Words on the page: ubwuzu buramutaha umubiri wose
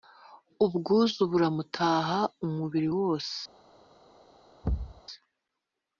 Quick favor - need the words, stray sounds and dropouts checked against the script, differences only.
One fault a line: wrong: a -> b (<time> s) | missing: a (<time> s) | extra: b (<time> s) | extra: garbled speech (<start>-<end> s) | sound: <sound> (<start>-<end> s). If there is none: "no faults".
sound: thud (4.6-5.0 s)